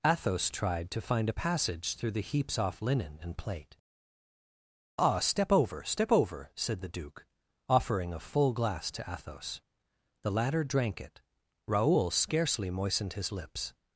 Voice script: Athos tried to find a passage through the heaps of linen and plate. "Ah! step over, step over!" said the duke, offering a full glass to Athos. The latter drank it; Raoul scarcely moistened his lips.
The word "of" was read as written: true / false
false